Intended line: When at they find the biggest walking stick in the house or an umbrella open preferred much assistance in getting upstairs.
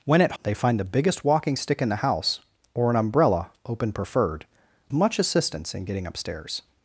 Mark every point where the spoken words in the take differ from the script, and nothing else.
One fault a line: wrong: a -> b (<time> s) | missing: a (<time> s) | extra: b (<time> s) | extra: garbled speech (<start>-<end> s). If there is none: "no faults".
no faults